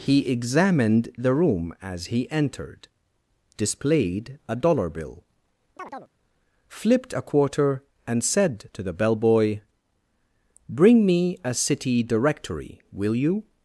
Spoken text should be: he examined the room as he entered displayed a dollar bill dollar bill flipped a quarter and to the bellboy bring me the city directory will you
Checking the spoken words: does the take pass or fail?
fail